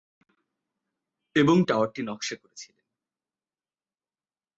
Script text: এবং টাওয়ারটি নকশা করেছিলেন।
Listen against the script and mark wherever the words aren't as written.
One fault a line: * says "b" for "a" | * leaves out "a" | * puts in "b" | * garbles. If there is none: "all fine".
all fine